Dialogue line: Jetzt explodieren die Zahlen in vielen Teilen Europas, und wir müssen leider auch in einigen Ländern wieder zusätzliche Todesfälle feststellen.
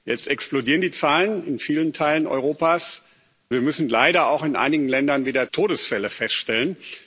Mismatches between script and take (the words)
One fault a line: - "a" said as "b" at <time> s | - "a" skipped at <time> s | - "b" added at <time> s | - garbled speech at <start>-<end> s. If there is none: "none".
- "und" skipped at 3.0 s
- "zusätzliche" skipped at 5.5 s